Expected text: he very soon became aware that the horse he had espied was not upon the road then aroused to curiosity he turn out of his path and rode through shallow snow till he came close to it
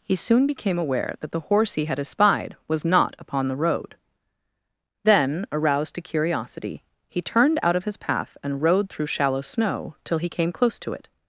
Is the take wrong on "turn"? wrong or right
wrong